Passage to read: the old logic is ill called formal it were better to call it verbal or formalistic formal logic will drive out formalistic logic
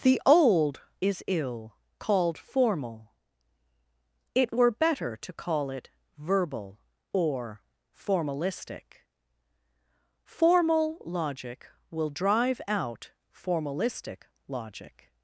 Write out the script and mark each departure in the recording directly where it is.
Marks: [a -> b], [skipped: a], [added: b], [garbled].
the old [skipped: logic] is ill called formal it were better to call it verbal or formalistic formal logic will drive out formalistic logic